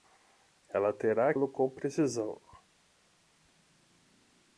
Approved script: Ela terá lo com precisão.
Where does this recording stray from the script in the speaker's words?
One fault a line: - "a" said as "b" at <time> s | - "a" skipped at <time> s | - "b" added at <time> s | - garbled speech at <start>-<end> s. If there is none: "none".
none